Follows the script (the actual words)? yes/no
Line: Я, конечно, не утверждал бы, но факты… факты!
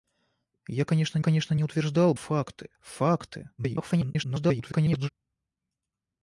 no